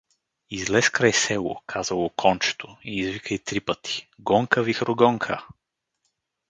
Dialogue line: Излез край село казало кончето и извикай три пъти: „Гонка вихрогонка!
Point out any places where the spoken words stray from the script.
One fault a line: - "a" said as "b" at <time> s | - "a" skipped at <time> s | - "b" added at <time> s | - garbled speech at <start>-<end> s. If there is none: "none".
none